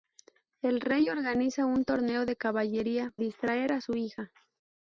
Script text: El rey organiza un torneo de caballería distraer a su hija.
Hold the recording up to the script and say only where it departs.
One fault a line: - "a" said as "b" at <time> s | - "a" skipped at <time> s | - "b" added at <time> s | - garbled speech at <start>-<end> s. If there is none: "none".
none